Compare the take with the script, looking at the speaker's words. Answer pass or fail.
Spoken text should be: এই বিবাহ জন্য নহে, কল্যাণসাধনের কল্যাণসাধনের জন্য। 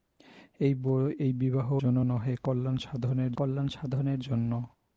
pass